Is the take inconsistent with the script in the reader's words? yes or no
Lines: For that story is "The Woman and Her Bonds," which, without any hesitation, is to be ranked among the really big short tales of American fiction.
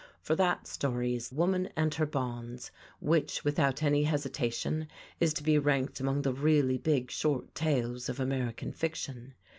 yes